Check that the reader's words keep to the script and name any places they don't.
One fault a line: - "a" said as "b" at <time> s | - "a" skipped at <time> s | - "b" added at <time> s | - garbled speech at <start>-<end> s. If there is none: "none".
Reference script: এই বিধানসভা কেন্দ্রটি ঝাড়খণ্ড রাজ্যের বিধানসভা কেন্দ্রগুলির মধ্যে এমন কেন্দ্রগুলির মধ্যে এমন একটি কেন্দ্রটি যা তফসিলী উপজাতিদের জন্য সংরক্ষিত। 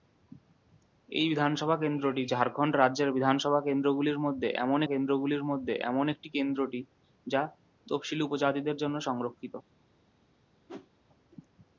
none